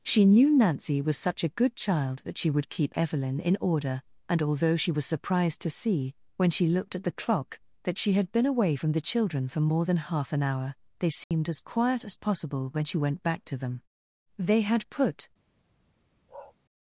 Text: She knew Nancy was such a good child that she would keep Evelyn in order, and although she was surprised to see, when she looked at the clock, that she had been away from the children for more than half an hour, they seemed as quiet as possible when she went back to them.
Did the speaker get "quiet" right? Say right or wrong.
right